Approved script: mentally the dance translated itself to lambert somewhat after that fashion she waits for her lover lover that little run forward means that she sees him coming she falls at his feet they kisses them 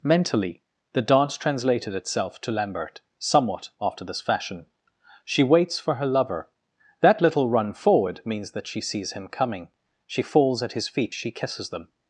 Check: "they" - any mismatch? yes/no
yes